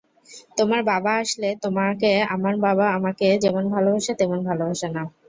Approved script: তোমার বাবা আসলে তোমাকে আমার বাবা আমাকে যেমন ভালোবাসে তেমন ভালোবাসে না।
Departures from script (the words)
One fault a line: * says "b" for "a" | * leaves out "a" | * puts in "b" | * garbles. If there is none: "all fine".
all fine